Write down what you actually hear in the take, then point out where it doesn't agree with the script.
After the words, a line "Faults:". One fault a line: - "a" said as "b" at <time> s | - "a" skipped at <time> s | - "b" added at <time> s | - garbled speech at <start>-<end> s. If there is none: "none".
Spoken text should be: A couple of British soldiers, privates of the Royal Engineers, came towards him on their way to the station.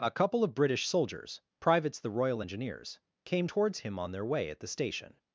A couple of British soldiers, privates the Royal Engineers, came towards him on their way at the station.
Faults:
- "of" skipped at 2.0 s
- "to" said as "at" at 4.5 s